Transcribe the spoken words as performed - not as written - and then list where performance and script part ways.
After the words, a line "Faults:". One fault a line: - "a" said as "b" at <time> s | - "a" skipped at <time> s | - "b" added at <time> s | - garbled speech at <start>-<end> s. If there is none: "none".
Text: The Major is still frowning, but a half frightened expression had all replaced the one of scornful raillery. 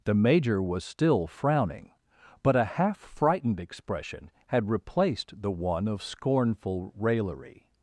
The Major was still frowning, but a half frightened expression had replaced the one of scornful raillery.
Faults:
- "is" said as "was" at 0.6 s
- "all" skipped at 4.7 s